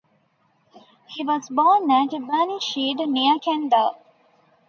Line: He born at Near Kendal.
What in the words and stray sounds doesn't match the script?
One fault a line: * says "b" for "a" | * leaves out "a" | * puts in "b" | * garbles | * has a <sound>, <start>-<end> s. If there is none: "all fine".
* puts in "was"
* puts in "Burnishead"